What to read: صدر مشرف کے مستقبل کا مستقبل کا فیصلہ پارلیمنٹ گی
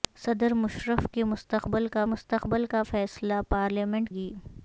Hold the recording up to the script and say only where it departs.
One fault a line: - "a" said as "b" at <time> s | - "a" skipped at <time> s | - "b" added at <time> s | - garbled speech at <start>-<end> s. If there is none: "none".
none